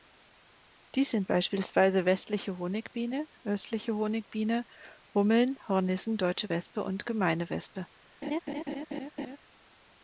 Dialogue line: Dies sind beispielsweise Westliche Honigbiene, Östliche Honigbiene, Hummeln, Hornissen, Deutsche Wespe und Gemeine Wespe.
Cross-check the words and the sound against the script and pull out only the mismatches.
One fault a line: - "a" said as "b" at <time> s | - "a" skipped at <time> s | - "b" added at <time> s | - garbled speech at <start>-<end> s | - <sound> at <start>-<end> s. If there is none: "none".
- laugh at 8.2-9.4 s